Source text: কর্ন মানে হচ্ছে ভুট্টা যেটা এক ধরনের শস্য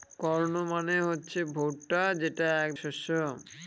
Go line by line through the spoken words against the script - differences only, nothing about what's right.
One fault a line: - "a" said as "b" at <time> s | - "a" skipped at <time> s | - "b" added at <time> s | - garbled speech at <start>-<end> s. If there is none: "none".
- "ধরনের" skipped at 2.7 s